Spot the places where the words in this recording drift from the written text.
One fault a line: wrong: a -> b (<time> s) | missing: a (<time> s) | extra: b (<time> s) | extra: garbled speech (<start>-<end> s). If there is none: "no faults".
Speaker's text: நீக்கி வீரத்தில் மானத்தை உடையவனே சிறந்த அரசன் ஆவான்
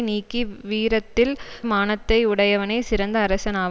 no faults